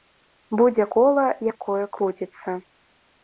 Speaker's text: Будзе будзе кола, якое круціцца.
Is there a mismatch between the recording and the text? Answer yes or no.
yes